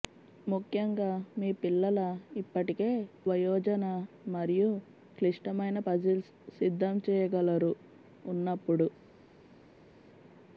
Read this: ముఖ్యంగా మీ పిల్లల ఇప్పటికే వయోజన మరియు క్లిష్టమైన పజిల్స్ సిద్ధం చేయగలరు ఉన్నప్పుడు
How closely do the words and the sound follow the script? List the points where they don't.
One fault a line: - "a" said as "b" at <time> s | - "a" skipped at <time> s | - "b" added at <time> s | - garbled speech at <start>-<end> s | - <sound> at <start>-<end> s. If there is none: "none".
none